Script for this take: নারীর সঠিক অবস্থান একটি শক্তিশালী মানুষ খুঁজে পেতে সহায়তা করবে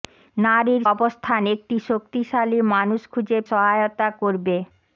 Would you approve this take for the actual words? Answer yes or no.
no